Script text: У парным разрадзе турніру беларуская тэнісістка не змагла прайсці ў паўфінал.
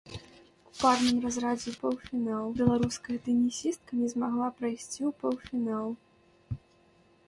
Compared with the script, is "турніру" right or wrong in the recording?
wrong